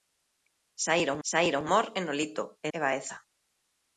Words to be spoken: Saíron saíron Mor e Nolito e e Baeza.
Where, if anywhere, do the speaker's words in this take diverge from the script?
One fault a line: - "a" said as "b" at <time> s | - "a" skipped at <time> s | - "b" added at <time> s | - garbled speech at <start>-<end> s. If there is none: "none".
none